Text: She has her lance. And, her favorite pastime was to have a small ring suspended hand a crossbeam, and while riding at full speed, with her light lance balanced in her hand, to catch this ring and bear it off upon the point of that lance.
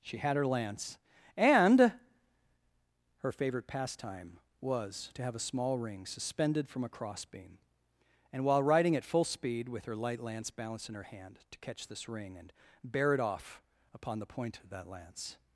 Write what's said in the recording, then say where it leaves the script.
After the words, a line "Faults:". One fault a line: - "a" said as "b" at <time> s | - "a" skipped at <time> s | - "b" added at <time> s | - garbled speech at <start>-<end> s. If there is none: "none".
She had her lance. And, her favorite pastime was to have a small ring suspended from a crossbeam, and while riding at full speed, with her light lance balanced in her hand, to catch this ring and bear it off upon the point of that lance.
Faults:
- "has" said as "had" at 0.2 s
- "hand" said as "from" at 6.7 s